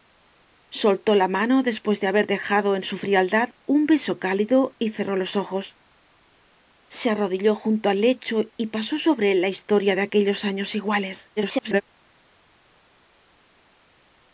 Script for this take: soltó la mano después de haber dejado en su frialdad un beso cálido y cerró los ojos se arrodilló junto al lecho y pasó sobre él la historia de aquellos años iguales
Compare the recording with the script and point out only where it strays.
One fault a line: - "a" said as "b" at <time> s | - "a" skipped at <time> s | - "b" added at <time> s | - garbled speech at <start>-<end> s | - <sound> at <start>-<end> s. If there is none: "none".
- garbled speech at 11.4-11.8 s